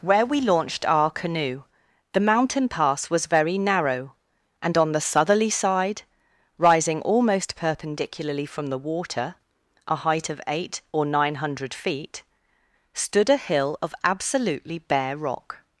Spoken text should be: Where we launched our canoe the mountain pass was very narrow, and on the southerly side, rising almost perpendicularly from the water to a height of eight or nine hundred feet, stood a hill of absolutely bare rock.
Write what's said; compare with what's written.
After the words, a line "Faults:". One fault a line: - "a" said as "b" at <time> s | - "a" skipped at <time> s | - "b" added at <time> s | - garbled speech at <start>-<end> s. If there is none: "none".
Where we launched our canoe the mountain pass was very narrow, and on the southerly side, rising almost perpendicularly from the water a height of eight or nine hundred feet, stood a hill of absolutely bare rock.
Faults:
- "to" skipped at 9.3 s